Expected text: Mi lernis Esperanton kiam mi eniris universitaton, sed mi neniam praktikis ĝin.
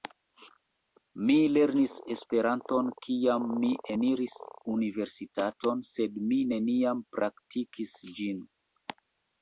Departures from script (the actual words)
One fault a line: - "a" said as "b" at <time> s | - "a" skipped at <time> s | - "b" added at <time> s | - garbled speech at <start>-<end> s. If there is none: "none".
none